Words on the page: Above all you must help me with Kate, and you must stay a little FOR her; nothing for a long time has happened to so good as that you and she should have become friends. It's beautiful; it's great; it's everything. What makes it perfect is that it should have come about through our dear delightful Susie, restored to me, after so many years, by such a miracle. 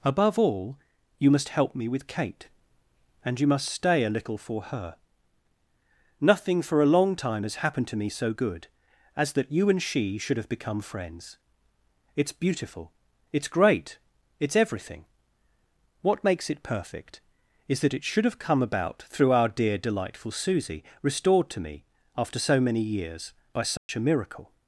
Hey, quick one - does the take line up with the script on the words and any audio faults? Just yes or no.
no